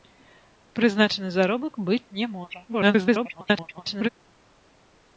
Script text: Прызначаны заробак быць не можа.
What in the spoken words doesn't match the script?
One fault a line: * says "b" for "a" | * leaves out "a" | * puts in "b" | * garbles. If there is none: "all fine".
* garbles